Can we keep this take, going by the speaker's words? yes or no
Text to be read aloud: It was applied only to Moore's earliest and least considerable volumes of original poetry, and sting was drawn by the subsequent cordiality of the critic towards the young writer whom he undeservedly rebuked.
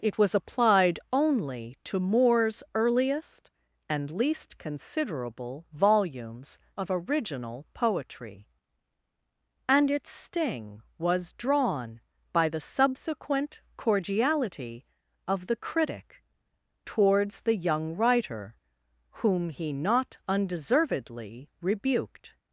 no